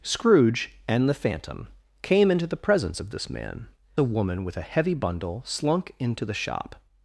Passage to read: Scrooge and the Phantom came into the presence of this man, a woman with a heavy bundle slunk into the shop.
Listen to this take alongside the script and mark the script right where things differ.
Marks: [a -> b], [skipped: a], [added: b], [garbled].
Scrooge and the Phantom came into the presence of this man, a woman with a heavy bundle slunk into the shop.